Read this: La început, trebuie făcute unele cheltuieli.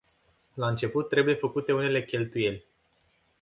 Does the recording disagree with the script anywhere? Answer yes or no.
no